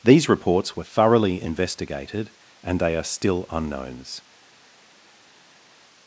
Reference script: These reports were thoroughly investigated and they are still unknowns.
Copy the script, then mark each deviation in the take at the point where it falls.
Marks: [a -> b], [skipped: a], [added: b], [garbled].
These reports were thoroughly investigated and they are still unknowns.